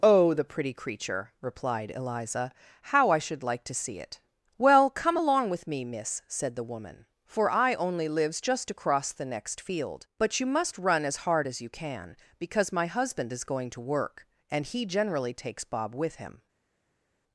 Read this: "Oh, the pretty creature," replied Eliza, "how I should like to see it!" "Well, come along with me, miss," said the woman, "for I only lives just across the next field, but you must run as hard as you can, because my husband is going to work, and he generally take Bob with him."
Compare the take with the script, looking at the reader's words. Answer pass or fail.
fail